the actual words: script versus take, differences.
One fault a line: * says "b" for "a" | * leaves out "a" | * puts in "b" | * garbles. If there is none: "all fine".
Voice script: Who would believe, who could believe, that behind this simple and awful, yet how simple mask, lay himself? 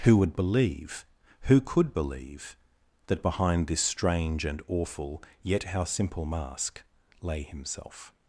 * says "strange" for "simple"